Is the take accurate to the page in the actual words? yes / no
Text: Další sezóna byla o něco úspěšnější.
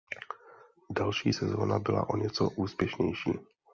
yes